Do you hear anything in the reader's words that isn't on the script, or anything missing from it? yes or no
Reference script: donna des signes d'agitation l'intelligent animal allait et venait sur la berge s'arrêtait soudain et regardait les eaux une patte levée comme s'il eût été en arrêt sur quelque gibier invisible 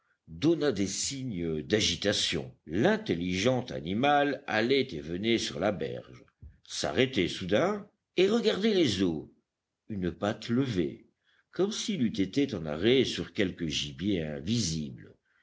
no